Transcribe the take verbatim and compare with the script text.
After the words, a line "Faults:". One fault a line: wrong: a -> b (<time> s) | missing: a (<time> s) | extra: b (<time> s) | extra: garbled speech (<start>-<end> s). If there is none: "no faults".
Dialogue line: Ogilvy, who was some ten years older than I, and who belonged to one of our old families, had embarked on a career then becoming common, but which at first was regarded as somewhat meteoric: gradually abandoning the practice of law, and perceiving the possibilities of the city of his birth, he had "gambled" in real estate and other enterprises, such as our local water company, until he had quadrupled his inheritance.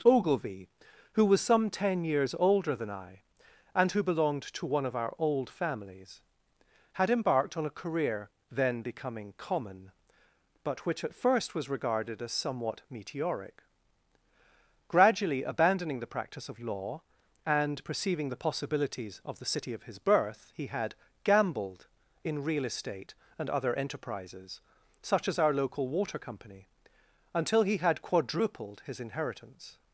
Ogilvy, who was some ten years older than I, and who belonged to one of our old families, had embarked on a career then becoming common, but which at first was regarded as somewhat meteoric: gradually abandoning the practice of law, and perceiving the possibilities of the city of his birth, he had "gambled" in real estate and other enterprises, such as our local water company, until he had quadrupled his inheritance.
Faults:
no faults